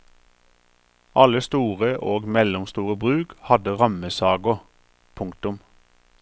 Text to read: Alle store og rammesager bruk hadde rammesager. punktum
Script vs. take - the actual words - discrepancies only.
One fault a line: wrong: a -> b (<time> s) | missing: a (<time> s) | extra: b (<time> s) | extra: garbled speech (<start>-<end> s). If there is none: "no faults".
wrong: rammesager -> mellomstore (2.3 s)